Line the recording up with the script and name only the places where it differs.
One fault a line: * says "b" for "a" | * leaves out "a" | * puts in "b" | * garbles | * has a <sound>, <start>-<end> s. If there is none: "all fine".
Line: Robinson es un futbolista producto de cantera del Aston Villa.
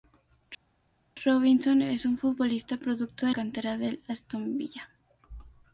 all fine